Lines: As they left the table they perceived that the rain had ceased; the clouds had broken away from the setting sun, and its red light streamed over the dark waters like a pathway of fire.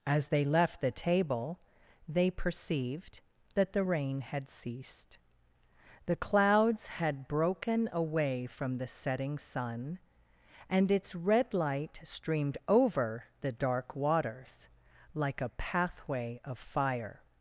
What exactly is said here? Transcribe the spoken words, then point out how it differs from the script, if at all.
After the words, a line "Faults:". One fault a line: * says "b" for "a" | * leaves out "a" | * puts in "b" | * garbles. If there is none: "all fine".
As they left the table they perceived that the rain had ceased; the clouds had broken away from the setting sun, and its red light streamed over the dark waters like a pathway of fire.
Faults:
all fine